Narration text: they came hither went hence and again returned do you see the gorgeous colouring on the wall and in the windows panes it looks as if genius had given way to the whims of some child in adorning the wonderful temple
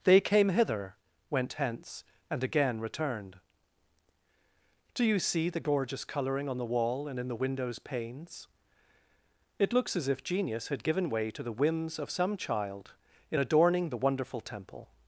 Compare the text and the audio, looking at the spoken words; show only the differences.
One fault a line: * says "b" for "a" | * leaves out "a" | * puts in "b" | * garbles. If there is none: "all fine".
all fine